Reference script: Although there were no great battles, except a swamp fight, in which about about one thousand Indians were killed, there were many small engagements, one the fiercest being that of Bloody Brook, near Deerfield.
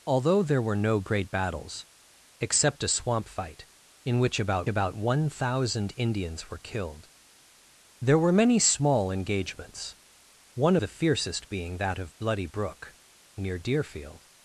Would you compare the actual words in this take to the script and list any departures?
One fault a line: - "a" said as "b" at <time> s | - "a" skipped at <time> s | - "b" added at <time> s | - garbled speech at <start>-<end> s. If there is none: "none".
none